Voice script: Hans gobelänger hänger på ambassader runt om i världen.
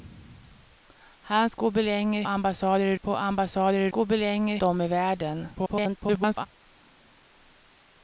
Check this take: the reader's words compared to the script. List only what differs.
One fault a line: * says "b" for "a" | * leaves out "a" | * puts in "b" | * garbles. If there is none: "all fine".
* says "ambassader" for "hänger"
* says "gobelänger" for "runt"
* garbles